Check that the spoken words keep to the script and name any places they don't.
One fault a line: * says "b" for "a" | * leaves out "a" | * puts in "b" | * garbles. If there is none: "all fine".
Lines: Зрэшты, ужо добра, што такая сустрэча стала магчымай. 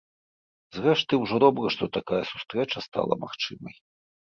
all fine